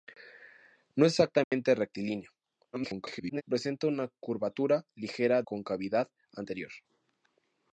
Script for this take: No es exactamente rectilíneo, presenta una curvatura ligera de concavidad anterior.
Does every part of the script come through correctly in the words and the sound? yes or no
no